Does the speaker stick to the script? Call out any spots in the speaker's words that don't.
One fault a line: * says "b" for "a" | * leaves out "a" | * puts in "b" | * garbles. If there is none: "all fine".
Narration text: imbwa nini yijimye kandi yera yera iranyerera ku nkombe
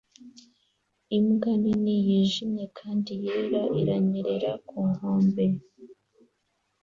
* leaves out "yera"